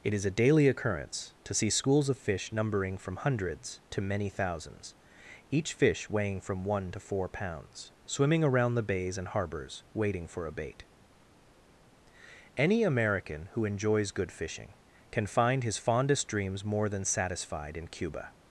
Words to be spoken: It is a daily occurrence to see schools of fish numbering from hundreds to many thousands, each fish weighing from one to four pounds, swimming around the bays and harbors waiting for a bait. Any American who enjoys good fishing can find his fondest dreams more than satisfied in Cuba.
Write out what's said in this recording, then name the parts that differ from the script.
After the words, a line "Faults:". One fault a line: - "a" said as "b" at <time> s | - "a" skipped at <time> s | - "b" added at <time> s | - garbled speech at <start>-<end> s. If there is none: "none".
It is a daily occurrence to see schools of fish numbering from hundreds to many thousands, each fish weighing from one to four pounds, swimming around the bays and harbors waiting for a bait. Any American who enjoys good fishing can find his fondest dreams more than satisfied in Cuba.
Faults:
none